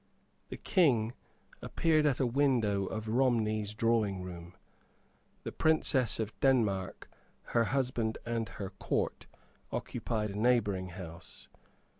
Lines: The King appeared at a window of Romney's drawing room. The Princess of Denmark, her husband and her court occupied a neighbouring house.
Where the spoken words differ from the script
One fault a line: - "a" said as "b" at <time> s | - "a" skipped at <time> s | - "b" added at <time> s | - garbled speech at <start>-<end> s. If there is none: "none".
none